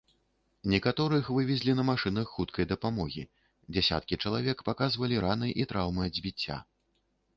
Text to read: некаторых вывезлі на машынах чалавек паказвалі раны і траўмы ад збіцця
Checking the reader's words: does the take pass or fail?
fail